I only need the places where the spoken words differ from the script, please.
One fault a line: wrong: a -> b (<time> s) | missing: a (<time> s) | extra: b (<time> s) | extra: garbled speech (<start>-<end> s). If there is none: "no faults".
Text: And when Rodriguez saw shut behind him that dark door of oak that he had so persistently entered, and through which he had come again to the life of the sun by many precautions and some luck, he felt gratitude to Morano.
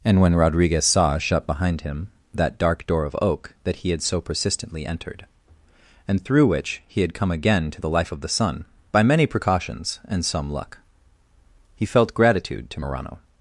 no faults